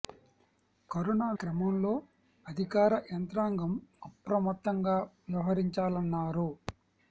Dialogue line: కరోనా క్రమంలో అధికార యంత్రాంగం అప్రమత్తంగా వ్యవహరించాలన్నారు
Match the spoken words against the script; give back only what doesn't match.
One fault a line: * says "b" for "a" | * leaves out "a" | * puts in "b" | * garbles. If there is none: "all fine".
all fine